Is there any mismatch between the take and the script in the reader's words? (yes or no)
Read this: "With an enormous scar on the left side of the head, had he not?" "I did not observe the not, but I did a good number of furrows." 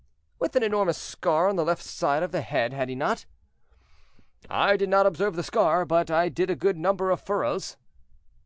yes